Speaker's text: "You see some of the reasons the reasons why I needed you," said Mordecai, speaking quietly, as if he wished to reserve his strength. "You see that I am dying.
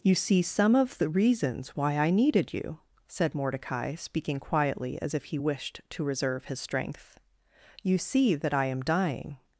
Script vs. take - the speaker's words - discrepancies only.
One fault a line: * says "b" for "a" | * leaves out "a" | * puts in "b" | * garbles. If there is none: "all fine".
* leaves out "the reasons"